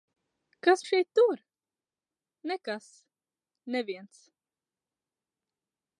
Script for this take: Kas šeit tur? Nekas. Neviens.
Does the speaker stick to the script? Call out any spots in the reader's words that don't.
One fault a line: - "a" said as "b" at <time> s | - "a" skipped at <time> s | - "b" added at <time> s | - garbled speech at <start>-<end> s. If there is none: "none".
none